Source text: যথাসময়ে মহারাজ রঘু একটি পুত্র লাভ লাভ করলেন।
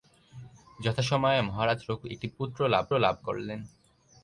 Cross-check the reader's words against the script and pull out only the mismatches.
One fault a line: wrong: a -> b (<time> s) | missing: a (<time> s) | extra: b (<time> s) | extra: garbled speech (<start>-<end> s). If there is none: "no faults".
no faults